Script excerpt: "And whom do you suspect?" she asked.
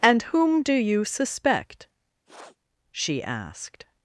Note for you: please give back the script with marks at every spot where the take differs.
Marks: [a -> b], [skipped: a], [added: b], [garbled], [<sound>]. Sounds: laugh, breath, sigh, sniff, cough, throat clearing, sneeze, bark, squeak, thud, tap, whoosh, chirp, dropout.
"And whom do you suspect?" [sniff] she asked.